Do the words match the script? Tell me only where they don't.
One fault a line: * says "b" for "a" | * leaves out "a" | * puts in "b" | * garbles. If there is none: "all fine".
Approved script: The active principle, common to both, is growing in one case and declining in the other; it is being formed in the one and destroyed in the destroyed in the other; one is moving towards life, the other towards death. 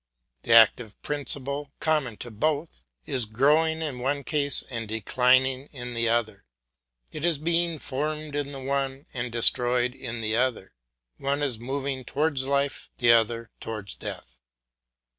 * leaves out "destroyed in the"